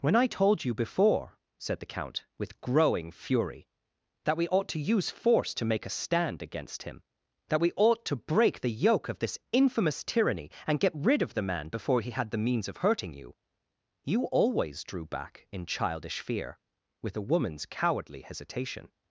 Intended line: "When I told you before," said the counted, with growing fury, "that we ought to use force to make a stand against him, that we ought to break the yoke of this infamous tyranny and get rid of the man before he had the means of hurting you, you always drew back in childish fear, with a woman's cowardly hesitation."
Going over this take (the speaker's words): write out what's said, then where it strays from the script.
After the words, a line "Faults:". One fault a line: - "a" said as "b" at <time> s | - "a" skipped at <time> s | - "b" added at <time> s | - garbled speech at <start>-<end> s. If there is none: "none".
"When I told you before," said the count, with growing fury, "that we ought to use force to make a stand against him, that we ought to break the yoke of this infamous tyranny and get rid of the man before he had the means of hurting you, you always drew back in childish fear, with a woman's cowardly hesitation."
Faults:
- "counted" said as "count" at 1.9 s